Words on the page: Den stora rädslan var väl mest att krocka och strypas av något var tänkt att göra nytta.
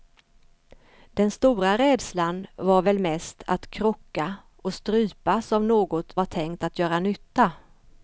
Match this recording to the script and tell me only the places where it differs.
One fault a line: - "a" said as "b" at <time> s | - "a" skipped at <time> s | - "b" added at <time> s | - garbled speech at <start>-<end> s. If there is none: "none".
none